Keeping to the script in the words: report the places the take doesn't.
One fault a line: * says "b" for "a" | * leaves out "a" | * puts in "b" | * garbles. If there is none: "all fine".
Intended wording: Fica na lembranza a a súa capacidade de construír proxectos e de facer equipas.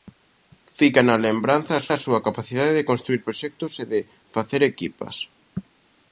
all fine